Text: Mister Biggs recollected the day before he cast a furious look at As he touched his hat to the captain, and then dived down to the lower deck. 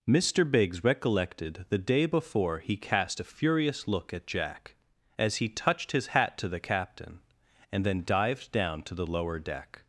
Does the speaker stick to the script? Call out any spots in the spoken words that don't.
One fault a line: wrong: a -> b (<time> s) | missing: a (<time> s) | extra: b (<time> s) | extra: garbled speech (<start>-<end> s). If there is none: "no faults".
extra: Jack (4.2 s)